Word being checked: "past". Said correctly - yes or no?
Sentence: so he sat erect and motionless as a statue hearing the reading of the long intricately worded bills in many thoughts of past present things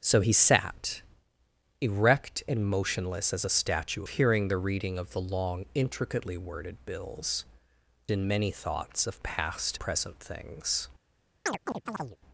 yes